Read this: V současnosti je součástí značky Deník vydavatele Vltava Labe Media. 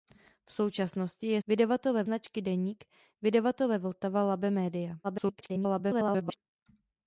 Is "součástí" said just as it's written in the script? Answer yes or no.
no